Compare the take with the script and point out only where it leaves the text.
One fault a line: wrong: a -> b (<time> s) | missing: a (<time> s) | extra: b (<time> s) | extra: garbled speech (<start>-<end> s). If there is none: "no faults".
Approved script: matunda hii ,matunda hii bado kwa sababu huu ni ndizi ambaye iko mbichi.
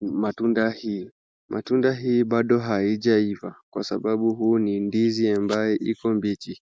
extra: haijaiva (2.6 s)